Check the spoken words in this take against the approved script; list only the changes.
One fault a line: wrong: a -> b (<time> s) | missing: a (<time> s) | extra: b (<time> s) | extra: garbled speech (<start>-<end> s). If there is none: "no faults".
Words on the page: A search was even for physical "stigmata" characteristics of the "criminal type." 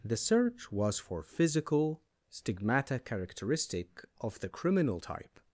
wrong: A -> The (0.0 s)
missing: even (1.0 s)
wrong: characteristics -> characteristic (3.0 s)